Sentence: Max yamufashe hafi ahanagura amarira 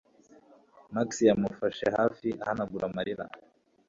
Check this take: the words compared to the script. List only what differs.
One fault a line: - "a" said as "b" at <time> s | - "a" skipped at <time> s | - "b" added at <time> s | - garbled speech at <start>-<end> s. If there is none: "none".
none